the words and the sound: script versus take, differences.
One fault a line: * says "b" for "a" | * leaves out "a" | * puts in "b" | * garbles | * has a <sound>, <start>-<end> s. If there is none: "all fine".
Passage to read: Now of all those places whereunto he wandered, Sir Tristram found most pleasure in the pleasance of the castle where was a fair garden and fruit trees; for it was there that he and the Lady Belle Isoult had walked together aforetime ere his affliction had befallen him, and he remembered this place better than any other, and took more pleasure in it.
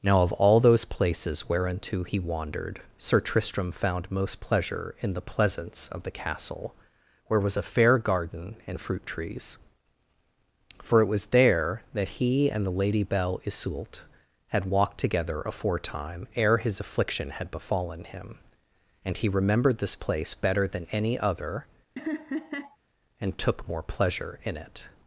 * has a laugh, 22.0-22.8 s